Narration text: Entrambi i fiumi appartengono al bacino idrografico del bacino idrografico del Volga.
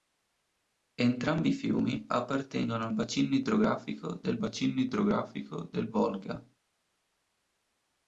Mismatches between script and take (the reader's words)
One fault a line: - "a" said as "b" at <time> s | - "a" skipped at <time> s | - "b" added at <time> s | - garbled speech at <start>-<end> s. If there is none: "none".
none